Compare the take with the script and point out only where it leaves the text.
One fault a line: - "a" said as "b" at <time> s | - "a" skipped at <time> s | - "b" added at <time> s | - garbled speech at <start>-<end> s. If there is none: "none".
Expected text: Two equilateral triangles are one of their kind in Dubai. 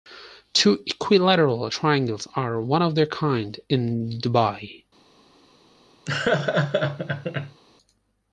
none